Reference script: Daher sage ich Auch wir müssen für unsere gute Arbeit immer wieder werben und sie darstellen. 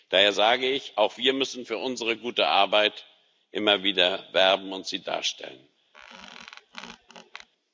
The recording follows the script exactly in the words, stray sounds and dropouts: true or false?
false